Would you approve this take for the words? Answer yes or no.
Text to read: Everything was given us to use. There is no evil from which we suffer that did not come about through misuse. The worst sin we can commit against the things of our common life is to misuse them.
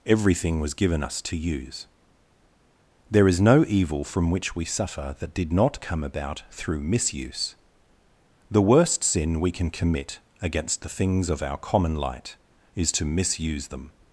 no